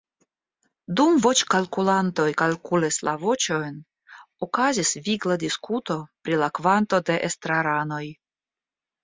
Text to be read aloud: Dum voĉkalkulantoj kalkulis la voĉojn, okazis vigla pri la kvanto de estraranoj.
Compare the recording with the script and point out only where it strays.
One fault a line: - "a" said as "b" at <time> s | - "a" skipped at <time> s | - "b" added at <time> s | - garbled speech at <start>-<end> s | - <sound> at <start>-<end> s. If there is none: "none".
- "diskuto" added at 5.5 s